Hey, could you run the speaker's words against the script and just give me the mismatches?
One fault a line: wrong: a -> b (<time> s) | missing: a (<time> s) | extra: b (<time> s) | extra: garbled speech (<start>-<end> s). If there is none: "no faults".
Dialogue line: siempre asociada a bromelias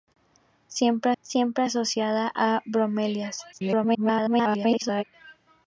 extra: siempre (1.2 s)
extra: garbled speech (3.5-5.0 s)